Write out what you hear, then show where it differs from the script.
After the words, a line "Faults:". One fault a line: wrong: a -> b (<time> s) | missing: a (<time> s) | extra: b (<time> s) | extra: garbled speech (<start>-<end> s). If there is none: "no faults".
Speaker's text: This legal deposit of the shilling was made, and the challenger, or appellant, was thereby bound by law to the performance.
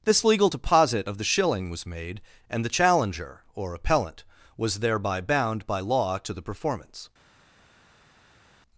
This legal deposit of the shilling was made, and the challenger, or appellant, was thereby bound by law to the performance.
Faults:
no faults